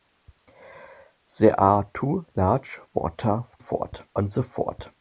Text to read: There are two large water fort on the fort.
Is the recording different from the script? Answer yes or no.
no